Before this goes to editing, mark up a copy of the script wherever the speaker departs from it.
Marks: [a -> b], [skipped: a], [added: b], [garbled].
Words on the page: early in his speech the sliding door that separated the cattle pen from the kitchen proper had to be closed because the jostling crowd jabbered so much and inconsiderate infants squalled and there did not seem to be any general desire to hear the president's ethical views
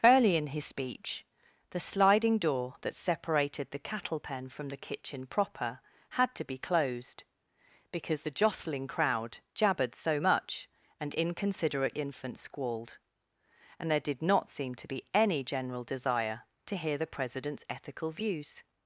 early in his speech the sliding door that separated the cattle pen from the kitchen proper had to be closed because the jostling crowd jabbered so much and inconsiderate infants squalled and there did not seem to be any general desire to hear the president's ethical views